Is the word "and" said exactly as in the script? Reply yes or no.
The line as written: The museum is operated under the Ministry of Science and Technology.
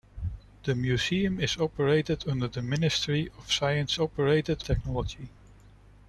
no